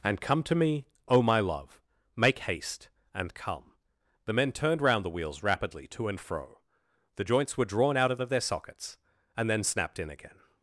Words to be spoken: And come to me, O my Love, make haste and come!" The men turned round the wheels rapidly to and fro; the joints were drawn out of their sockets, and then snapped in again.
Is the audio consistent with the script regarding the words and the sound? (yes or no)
no